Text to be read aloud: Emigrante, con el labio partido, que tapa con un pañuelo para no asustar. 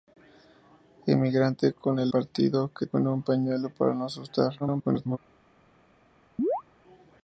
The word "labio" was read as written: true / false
false